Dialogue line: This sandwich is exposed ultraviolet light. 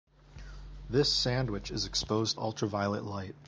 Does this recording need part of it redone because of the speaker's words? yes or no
no